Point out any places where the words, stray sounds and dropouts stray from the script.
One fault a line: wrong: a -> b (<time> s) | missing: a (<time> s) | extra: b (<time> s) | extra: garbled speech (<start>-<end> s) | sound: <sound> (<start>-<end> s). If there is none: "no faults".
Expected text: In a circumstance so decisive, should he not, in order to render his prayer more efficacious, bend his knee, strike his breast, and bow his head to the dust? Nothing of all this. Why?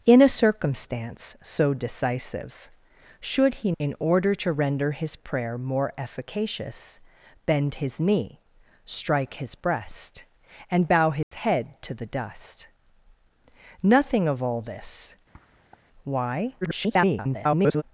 missing: not (3.7 s)
sound: dropout (11.2-11.3 s)
sound: sniff (15.3-15.8 s)
extra: garbled speech (16.6-17.8 s)